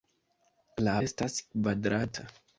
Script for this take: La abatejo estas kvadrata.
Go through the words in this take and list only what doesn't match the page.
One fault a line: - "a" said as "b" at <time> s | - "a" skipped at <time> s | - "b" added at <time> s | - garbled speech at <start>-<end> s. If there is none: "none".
- "abatejo" skipped at 0.9 s